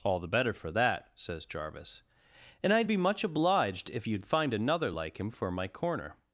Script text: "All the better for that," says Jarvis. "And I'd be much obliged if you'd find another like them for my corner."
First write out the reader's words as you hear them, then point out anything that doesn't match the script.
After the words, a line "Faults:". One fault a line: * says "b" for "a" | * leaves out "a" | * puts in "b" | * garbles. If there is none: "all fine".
"All the better for that," says Jarvis. "And I'd be much obliged if you'd find another like him for my corner."
Faults:
* says "him" for "them"